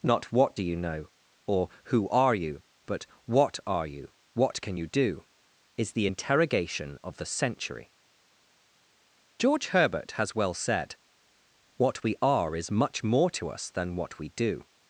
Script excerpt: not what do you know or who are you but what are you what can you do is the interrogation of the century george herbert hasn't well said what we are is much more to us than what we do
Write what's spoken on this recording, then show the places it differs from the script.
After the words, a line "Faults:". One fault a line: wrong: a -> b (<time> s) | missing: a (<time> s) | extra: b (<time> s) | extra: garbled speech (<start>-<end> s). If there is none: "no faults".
not what do you know or who are you but what are you what can you do is the interrogation of the century george herbert has well said what we are is much more to us than what we do
Faults:
wrong: hasn't -> has (10.1 s)